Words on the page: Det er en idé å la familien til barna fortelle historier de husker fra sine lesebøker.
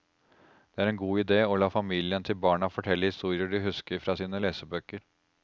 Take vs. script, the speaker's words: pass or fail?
fail